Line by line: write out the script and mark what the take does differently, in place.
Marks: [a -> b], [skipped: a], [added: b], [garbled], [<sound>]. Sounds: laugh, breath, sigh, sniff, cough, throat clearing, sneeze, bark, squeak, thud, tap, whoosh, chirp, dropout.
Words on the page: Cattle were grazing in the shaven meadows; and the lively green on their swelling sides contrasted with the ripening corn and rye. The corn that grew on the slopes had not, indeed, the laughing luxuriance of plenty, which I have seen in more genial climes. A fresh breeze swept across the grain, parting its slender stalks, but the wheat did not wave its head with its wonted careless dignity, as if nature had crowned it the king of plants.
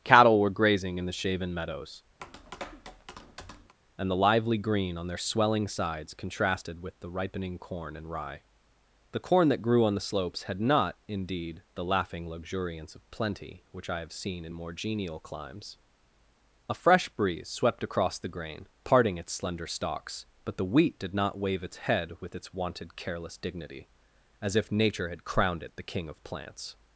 Cattle were grazing in the shaven meadows; [tap] and the lively green on their swelling sides contrasted with the ripening corn and rye. The corn that grew on the slopes had not, indeed, the laughing luxuriance of plenty, which I have seen in more genial climes. A fresh breeze swept across the grain, parting its slender stalks, but the wheat did not wave its head with its wonted careless dignity, as if nature had crowned it the king of plants.